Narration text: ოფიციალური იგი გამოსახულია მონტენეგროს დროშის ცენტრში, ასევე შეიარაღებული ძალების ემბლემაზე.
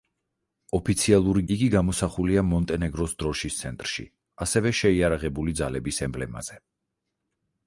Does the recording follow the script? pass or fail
pass